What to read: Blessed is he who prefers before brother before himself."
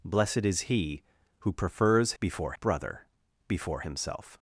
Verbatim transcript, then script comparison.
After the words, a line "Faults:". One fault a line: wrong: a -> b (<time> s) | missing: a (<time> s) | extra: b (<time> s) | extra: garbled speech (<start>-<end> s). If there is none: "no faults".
Blessed is he who prefers before brother before himself."
Faults:
no faults